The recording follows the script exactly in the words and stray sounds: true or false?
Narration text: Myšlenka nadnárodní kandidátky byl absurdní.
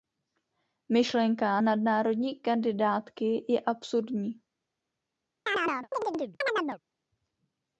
false